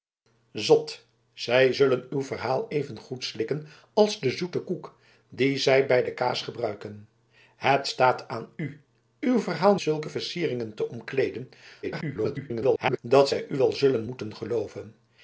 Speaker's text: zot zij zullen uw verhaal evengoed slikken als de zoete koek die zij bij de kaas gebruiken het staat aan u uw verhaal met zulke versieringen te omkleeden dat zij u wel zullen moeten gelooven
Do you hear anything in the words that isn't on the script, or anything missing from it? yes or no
yes